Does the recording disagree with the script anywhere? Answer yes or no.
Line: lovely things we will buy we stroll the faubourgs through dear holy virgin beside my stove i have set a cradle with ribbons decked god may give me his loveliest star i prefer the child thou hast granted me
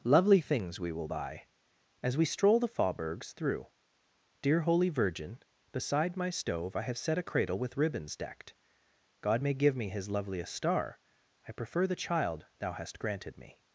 yes